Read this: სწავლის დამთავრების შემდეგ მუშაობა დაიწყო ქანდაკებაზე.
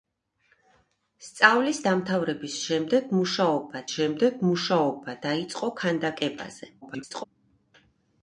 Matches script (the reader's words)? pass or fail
fail